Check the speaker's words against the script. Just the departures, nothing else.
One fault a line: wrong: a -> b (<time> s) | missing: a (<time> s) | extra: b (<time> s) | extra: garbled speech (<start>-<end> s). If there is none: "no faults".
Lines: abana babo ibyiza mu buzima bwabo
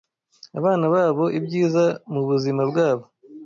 no faults